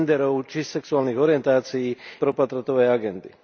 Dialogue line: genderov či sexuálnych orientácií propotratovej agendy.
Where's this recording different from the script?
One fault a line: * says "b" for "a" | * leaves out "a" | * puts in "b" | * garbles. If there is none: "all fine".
all fine